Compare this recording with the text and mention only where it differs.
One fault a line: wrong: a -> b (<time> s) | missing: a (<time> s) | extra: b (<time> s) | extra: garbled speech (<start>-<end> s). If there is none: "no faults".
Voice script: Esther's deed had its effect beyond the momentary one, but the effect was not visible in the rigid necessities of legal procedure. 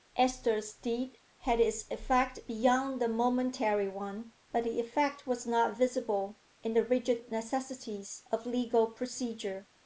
no faults